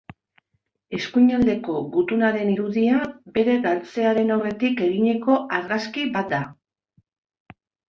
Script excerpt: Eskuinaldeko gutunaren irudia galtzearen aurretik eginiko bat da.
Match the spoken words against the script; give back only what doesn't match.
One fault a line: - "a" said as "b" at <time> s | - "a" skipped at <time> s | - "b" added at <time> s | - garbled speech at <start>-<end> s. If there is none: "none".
- "bere" added at 3.4 s
- "argazki" added at 5.6 s